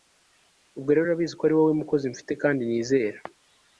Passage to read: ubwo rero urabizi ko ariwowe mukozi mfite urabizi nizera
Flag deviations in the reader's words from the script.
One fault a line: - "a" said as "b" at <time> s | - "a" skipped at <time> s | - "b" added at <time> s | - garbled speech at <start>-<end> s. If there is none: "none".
- "urabizi" said as "kandi" at 2.4 s